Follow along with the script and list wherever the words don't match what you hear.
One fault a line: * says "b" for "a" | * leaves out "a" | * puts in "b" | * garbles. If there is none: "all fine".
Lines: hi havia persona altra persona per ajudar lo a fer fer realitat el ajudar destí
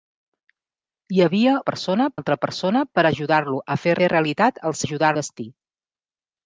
all fine